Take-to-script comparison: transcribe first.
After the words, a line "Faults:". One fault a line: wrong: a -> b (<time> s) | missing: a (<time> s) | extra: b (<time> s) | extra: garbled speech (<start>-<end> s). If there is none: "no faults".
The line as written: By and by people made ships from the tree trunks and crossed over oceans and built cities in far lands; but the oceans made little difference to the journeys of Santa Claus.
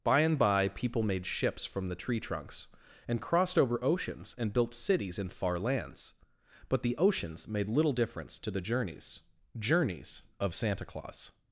By and by people made ships from the tree trunks and crossed over oceans and built cities in far lands; but the oceans made little difference to the journeys journeys of Santa Claus.
Faults:
extra: journeys (9.6 s)